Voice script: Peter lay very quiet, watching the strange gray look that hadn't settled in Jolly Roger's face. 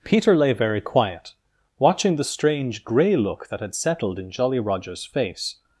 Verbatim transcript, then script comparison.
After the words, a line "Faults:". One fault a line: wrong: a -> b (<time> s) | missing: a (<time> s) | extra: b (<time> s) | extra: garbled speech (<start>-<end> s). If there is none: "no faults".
Peter lay very quiet, watching the strange gray look that had settled in Jolly Roger's face.
Faults:
wrong: hadn't -> had (3.6 s)